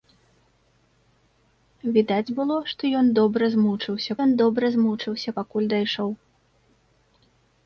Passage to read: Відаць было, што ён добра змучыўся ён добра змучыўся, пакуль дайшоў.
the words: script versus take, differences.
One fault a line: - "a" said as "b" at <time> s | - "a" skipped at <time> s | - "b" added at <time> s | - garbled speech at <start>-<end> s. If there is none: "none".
none